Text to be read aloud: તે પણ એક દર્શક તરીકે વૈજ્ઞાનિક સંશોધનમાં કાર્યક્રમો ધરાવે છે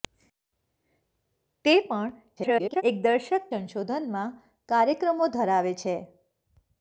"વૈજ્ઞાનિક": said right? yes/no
no